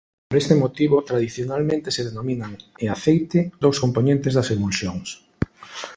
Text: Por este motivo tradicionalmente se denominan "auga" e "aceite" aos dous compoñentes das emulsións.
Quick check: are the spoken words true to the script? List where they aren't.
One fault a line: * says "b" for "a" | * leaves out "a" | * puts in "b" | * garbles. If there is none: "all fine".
* leaves out "auga"
* leaves out "aos"